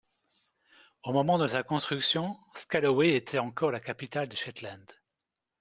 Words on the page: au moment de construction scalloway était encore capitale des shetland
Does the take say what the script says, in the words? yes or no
no